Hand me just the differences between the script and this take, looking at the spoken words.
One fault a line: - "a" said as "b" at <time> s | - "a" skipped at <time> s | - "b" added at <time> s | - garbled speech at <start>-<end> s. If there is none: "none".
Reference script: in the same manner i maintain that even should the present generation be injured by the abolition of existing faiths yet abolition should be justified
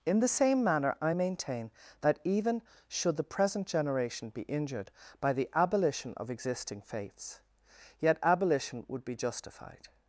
- "should" said as "would" at 8.9 s